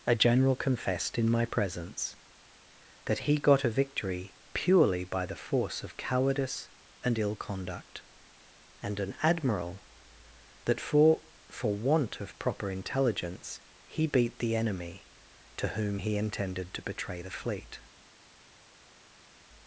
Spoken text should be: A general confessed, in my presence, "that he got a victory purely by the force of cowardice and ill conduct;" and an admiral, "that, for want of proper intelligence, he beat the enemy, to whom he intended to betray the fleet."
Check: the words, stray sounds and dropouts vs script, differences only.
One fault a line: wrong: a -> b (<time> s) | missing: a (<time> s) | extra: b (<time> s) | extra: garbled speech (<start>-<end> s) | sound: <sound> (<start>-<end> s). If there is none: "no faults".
extra: for (11.5 s)